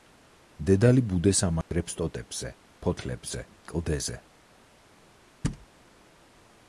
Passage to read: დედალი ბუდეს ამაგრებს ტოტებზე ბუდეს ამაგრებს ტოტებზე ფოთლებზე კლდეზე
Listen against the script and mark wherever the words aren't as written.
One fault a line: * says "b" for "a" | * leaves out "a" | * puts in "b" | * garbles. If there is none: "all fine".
* leaves out "ბუდეს ამაგრებს ტოტებზე"